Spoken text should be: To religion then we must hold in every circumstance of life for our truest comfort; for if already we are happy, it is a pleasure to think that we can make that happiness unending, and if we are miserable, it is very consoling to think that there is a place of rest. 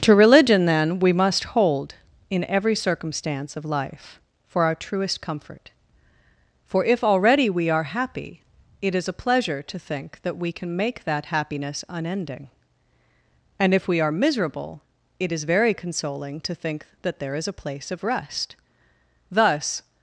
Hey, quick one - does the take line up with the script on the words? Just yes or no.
no